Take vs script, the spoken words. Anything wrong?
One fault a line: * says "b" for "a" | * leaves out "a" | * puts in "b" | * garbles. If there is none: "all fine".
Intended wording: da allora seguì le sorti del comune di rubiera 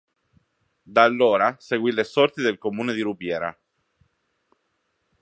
all fine